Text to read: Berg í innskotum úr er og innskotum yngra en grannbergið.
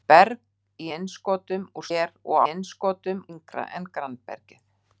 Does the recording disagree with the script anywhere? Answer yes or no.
no